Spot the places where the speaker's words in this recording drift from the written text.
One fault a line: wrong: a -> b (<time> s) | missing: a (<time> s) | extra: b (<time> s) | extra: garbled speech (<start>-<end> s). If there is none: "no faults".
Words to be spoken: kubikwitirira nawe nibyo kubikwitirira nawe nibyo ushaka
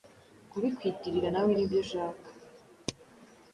missing: kubikwitirira nawe nibyo (1.8 s)